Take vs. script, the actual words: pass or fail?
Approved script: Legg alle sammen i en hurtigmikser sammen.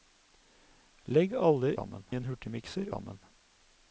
pass